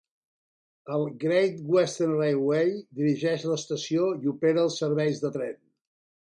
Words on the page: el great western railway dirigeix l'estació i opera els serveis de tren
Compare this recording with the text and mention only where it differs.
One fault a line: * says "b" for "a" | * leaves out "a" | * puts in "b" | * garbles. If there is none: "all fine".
all fine